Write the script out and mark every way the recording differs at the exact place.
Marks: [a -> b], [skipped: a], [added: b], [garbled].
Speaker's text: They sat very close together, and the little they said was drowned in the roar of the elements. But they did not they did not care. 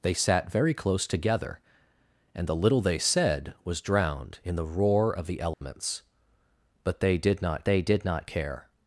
They sat very close together, and the little they said was drowned in the roar of the elements. But they did not they did not care.